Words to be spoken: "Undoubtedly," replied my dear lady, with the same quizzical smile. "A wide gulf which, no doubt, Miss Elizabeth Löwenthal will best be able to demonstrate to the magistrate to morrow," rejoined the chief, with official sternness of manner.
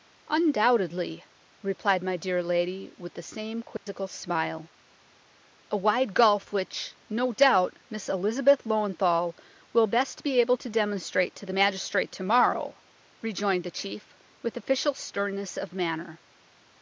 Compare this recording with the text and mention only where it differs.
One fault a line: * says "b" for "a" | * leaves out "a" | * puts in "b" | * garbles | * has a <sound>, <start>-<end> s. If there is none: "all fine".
* has a dropout, 3.8-3.9 s